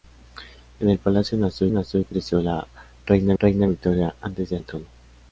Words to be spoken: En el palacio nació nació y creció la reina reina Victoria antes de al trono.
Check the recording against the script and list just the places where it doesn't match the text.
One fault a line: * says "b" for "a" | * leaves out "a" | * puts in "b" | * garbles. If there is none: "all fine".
all fine